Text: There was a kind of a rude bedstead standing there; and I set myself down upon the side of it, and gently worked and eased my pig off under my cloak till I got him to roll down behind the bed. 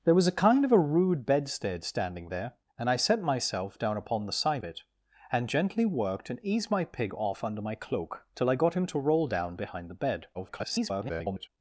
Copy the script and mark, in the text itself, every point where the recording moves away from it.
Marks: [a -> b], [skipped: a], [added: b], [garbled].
There was a kind of a rude bedstead standing there; and I set myself down upon the side [skipped: of] it, and gently worked and eased my pig off under my cloak till I got him to roll down behind the bed. [garbled]